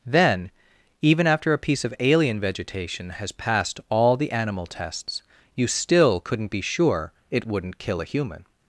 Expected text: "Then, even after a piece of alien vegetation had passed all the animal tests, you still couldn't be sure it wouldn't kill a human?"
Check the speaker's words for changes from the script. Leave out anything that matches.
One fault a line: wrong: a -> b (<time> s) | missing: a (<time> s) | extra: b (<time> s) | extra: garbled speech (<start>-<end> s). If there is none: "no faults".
wrong: had -> has (3.1 s)